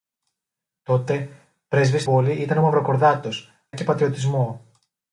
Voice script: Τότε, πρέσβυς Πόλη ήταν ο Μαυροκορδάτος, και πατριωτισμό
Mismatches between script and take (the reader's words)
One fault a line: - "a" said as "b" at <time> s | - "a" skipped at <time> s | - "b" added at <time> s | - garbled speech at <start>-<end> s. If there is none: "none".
none